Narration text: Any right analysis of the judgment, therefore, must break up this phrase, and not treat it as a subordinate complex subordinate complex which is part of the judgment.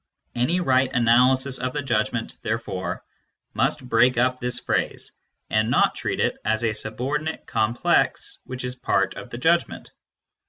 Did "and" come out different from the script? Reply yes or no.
no